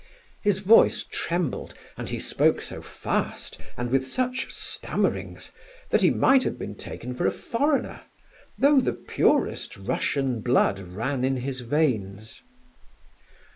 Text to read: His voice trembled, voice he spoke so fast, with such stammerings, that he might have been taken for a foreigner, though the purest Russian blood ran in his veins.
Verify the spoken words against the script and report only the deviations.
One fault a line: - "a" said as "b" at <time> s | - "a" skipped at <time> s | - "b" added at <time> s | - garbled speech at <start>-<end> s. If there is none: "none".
- "voice" said as "and" at 1.9 s
- "and" added at 3.8 s